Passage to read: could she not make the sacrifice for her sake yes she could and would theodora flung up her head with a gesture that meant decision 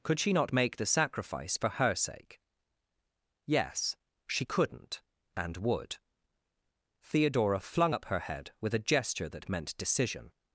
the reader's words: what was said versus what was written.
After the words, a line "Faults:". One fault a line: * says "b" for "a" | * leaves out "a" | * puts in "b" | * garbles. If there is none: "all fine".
could she not make the sacrifice for her sake yes she couldn't and would theodora flung up her head with a gesture that meant decision
Faults:
* says "couldn't" for "could"